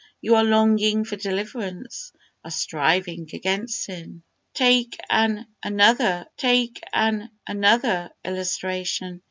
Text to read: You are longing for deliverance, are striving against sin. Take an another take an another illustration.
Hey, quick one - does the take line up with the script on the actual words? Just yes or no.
yes